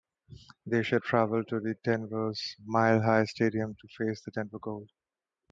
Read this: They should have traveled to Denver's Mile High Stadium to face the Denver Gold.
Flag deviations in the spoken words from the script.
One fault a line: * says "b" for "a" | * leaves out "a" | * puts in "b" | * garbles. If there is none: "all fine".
* leaves out "have"